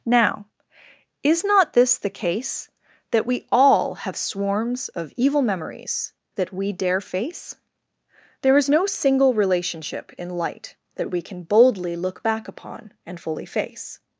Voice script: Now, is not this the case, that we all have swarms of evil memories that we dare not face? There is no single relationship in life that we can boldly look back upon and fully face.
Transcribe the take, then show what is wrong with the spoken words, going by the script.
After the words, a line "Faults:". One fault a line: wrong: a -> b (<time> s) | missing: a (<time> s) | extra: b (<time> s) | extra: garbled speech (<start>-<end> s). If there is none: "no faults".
Now, is not this the case, that we all have swarms of evil memories that we dare face? There is no single relationship in light that we can boldly look back upon and fully face.
Faults:
missing: not (7.0 s)
wrong: life -> light (10.3 s)